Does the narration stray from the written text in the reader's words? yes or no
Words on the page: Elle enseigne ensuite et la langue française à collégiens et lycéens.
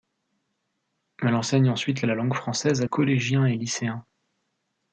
no